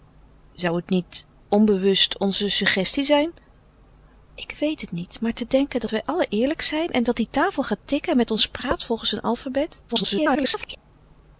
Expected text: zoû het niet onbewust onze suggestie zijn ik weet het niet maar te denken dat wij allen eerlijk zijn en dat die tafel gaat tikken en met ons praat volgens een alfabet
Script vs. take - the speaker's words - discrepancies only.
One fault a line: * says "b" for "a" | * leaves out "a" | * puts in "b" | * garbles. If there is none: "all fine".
* garbles